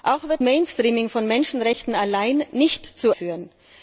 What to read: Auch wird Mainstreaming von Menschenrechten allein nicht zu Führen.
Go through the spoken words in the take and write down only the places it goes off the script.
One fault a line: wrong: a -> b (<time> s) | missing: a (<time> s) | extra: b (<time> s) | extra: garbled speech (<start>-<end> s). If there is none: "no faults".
no faults